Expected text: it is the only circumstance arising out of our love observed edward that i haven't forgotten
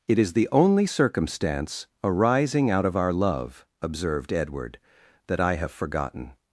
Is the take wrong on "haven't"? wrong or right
wrong